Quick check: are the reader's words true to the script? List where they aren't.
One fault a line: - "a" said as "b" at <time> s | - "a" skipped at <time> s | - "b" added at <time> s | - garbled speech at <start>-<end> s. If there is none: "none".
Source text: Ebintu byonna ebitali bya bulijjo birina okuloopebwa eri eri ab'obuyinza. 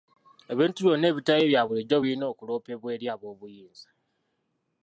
- "eri" skipped at 3.1 s